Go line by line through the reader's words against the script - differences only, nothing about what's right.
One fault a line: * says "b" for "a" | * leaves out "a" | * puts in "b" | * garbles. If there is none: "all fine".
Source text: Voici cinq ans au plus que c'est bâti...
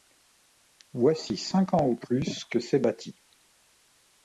all fine